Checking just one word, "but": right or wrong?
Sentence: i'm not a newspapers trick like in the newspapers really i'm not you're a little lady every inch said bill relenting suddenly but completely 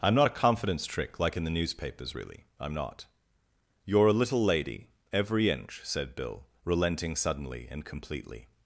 wrong